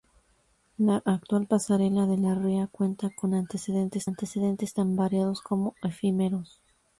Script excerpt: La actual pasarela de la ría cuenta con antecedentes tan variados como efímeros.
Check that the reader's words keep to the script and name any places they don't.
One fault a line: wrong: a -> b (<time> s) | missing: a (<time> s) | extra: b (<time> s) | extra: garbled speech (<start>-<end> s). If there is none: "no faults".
extra: antecedentes (4.0 s)